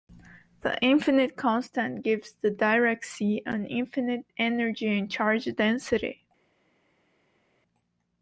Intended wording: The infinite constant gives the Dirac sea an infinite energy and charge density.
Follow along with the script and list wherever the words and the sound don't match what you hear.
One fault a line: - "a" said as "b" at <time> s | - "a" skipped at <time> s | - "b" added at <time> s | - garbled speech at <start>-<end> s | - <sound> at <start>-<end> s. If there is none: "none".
none